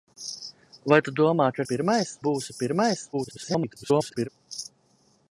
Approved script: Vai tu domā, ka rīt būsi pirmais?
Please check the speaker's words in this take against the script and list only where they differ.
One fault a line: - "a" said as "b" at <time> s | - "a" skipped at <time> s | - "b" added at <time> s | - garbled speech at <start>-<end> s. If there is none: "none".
- "rīt" said as "pirmais" at 1.7 s
- garbled speech at 3.1-4.3 s